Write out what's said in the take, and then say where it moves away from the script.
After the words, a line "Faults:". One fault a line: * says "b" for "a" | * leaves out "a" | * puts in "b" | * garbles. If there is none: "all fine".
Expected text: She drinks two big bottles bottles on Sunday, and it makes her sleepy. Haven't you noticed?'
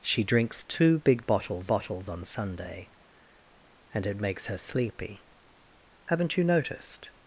She drinks two big bottles bottles on Sunday, and it makes her sleepy. Haven't you noticed?'
Faults:
all fine